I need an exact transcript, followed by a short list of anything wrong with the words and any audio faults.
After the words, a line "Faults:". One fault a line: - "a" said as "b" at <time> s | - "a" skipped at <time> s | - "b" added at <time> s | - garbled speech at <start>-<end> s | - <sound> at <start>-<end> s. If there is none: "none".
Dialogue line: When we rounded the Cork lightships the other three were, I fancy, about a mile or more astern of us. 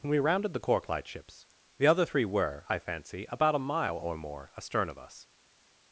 When we rounded the Cork lightships the other three were, I fancy, about a mile or more astern of us.
Faults:
none